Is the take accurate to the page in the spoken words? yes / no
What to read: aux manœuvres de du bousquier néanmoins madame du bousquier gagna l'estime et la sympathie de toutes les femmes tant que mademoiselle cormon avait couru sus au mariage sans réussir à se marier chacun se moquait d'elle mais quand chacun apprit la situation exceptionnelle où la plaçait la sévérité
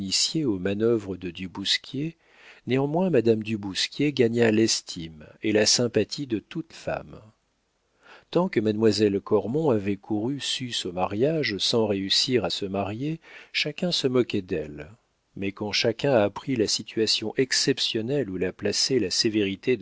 no